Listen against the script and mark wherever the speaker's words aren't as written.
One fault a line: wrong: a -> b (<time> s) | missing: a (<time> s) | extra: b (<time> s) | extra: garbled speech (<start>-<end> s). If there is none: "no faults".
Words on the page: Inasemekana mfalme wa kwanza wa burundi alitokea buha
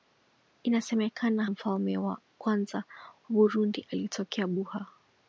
no faults